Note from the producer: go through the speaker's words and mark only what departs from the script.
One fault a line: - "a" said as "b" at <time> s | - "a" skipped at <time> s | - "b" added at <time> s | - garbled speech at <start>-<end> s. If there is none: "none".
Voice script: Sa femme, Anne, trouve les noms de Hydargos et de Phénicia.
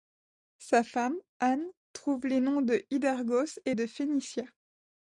none